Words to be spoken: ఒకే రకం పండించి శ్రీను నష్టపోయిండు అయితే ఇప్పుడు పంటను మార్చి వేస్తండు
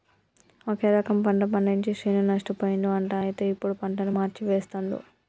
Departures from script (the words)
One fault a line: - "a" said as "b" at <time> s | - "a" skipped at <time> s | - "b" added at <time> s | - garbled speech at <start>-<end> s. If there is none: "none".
- "పంట" added at 1.2 s
- "అంట" added at 3.0 s